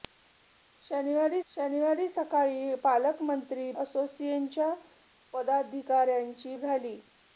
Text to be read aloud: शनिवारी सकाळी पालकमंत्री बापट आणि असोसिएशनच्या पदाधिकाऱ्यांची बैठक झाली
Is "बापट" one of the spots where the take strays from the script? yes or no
yes